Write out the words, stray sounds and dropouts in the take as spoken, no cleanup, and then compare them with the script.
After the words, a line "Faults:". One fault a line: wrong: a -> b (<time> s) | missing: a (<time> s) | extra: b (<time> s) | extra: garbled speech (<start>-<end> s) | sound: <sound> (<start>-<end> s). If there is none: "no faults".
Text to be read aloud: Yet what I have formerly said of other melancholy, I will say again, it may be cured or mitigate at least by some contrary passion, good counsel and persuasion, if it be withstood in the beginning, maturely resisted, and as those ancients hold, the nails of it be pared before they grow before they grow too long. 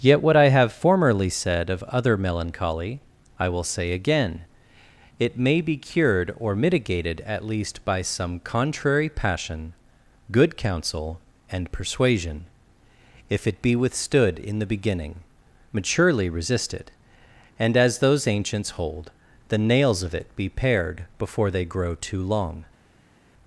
Yet what I have formerly said of other melancholy, I will say again, it may be cured or mitigated at least by some contrary passion, good counsel and persuasion, if it be withstood in the beginning, maturely resisted, and as those ancients hold, the nails of it be pared before they grow too long.
Faults:
wrong: mitigate -> mitigated (6.5 s)
missing: before they grow (21.9 s)